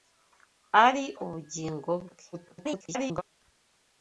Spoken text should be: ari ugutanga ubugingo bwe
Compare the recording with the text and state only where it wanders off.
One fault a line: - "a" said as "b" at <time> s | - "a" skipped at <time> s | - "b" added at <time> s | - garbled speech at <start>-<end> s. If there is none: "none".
- "ugutanga" skipped at 1.1 s
- garbled speech at 2.3-3.2 s